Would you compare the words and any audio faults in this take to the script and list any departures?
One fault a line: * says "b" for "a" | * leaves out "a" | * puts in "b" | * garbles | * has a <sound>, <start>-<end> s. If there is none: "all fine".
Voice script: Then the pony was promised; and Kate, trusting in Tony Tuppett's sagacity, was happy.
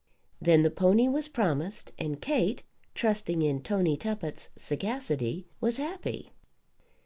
all fine